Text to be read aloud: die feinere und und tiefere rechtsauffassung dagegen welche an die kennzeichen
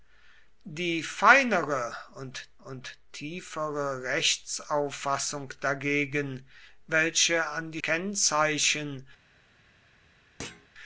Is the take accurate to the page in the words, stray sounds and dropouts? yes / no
no